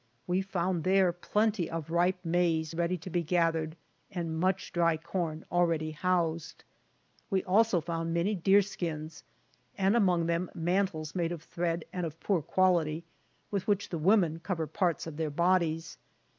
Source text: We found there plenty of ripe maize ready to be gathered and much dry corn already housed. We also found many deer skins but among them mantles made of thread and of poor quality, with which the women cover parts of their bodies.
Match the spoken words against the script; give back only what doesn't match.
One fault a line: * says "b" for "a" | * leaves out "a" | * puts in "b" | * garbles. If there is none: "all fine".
* says "and" for "but"